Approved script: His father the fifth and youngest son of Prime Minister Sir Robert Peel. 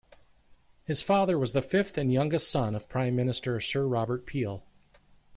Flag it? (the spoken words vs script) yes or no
yes